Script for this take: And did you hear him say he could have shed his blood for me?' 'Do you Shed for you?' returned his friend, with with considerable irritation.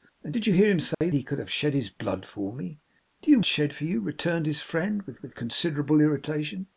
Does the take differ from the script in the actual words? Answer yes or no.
no